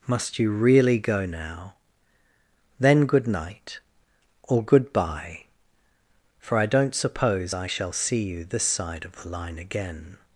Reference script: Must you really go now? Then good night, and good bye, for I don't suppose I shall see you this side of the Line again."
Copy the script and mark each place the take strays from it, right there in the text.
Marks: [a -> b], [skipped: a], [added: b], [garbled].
Must you really go now? Then good night, [and -> or] good bye, for I don't suppose I shall see you this side of the Line again."